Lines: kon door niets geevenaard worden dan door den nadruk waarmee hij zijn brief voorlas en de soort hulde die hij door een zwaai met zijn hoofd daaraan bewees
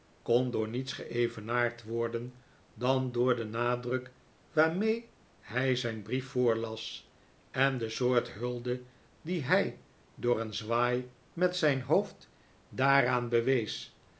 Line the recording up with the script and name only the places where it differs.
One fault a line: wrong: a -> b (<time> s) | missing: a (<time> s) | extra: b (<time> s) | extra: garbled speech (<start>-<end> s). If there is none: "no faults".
no faults